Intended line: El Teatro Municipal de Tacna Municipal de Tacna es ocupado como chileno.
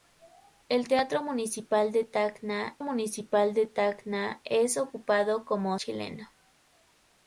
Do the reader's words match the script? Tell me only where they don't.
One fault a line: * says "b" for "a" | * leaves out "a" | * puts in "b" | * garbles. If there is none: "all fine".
all fine